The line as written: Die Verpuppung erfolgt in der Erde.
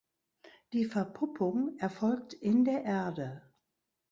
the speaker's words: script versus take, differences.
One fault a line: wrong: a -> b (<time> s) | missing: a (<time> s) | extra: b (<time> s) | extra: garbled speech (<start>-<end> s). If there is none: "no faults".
no faults